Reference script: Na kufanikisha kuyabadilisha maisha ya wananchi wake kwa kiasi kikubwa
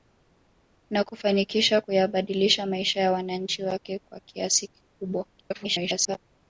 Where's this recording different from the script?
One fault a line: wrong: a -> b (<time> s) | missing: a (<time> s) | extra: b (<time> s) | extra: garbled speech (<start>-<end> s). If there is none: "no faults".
extra: garbled speech (5.3-6.2 s)